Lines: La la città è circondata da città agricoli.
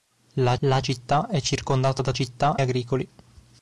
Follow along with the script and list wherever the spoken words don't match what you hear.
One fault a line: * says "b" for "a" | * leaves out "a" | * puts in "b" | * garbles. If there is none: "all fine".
all fine